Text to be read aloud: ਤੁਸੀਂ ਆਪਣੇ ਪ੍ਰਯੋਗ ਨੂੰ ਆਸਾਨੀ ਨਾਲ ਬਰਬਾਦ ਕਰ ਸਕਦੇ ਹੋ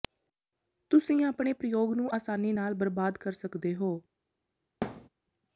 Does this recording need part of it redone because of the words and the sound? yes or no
yes